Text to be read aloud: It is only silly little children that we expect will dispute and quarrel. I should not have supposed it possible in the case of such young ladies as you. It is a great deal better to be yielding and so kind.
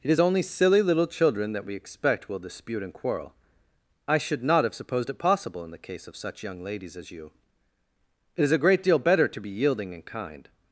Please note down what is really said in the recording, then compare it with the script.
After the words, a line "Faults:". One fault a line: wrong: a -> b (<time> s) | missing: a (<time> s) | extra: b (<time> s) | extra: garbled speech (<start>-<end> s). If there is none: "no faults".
It is only silly little children that we expect will dispute and quarrel. I should not have supposed it possible in the case of such young ladies as you. It is a great deal better to be yielding and kind.
Faults:
missing: so (10.1 s)